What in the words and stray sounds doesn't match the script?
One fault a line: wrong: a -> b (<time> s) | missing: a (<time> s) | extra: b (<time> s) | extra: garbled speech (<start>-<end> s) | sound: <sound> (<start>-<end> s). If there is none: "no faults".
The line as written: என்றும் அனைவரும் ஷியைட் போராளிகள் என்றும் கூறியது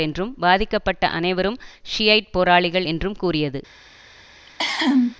extra: பாதிக்கப்பட்ட (0.4 s)
sound: cough (4.5-5.2 s)